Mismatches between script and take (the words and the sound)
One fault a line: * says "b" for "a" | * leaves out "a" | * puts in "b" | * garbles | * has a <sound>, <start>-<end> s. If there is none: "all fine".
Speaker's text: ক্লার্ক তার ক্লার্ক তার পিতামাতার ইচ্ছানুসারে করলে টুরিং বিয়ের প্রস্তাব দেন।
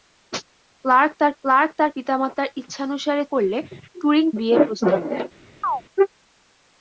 * has a chirp, 5.6-5.8 s